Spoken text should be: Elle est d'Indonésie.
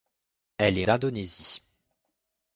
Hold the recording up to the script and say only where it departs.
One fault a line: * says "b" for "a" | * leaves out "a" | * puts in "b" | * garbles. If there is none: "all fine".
all fine